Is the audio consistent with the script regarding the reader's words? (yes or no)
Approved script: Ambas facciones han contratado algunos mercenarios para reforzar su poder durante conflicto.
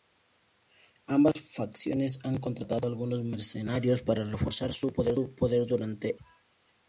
yes